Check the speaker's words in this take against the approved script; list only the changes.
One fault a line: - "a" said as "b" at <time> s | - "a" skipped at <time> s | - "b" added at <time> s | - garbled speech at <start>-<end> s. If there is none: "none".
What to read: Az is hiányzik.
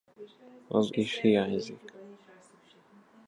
none